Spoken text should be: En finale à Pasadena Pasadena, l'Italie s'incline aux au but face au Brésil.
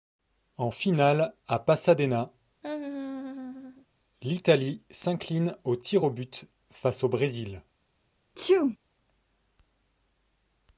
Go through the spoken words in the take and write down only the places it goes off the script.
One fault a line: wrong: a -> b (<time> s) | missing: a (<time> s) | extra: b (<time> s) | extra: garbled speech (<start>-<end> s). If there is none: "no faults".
missing: Pasadena (2.3 s)
extra: tirs (5.8 s)